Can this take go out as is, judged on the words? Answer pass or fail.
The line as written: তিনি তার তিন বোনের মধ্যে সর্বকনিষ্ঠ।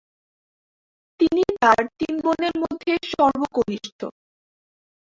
pass